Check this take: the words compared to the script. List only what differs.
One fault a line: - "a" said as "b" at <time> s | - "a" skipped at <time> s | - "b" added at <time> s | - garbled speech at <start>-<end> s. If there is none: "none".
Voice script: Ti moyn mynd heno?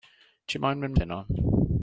none